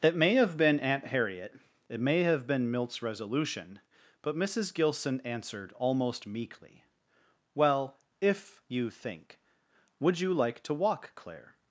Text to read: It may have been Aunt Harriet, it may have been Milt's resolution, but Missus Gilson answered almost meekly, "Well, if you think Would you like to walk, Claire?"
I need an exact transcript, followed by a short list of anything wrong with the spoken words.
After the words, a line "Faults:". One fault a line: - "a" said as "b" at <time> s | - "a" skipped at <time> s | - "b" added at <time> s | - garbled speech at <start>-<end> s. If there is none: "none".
It may have been Aunt Harriet, it may have been Milt's resolution, but Missus Gilson answered almost meekly, "Well, if you think Would you like to walk, Claire?"
Faults:
none